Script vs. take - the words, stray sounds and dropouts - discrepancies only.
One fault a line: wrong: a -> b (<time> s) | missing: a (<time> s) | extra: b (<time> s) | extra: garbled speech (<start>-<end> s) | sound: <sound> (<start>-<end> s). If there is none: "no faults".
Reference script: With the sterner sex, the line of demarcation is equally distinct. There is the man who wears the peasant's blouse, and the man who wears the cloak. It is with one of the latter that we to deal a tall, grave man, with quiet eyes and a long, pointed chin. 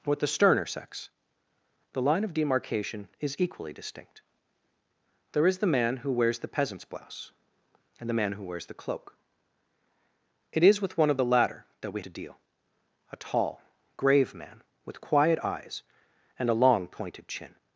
no faults